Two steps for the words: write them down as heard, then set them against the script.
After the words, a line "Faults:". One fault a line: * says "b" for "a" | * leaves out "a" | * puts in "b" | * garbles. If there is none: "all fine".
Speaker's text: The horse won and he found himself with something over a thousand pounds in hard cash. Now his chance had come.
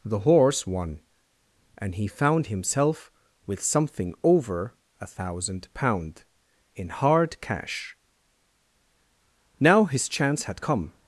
The horse won and he found himself with something over a thousand pound in hard cash. Now his chance had come.
Faults:
* says "pound" for "pounds"